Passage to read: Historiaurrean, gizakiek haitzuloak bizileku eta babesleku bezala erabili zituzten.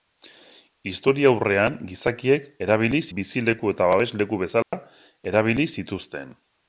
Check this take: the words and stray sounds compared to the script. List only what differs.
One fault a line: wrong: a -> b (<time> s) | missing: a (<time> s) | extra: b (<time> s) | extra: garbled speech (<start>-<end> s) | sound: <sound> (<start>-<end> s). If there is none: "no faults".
wrong: haitzuloak -> erabili (2.7 s)
sound: dropout (4.6-4.7 s)